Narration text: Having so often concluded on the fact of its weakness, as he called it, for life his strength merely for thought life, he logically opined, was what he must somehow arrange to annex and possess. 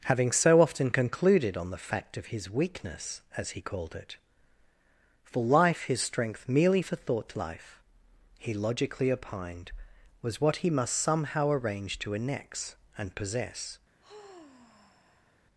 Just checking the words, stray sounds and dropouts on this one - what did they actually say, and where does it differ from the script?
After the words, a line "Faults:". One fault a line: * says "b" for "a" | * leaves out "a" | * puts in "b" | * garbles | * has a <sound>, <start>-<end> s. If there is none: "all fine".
Having so often concluded on the fact of his weakness, as he called it, for life his strength merely for thought life, he logically opined, was what he must somehow arrange to annex and possess.
Faults:
* says "his" for "its"
* has a sigh, 14.0-15.4 s